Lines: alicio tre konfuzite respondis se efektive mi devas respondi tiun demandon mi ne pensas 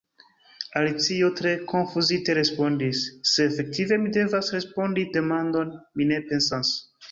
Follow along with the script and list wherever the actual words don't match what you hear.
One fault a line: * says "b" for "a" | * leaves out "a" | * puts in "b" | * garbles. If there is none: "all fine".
* leaves out "tiun"